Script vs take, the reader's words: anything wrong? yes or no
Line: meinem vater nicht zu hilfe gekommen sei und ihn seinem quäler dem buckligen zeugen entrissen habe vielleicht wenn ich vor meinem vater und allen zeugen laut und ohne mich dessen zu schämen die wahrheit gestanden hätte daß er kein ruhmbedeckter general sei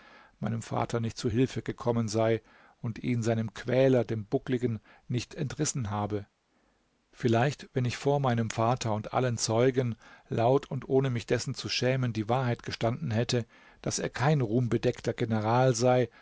yes